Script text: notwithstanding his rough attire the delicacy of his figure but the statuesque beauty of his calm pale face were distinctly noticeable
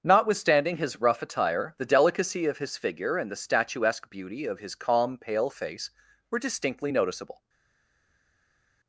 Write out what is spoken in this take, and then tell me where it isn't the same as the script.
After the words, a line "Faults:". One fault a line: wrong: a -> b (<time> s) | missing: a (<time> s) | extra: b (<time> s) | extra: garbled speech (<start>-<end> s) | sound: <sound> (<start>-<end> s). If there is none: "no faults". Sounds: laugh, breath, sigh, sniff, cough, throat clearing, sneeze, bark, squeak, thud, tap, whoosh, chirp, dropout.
notwithstanding his rough attire the delicacy of his figure and the statuesque beauty of his calm pale face were distinctly noticeable
Faults:
wrong: but -> and (3.2 s)